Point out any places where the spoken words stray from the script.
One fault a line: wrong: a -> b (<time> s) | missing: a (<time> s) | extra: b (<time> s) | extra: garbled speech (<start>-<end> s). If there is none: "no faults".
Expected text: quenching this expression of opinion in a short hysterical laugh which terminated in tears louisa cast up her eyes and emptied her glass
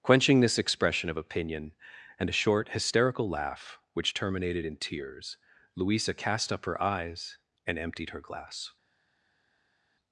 wrong: in -> and (2.2 s)